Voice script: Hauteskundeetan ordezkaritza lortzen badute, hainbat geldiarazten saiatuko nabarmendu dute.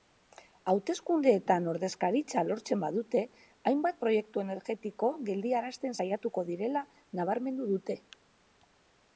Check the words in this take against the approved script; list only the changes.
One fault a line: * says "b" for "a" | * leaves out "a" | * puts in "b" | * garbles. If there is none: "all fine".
* puts in "proiektu energetiko"
* puts in "direla"